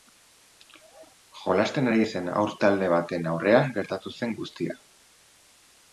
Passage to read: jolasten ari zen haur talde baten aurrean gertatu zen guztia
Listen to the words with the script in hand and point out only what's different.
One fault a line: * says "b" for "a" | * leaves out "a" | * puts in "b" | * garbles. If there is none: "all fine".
all fine